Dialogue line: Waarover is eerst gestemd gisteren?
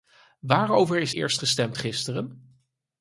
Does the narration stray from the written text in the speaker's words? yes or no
no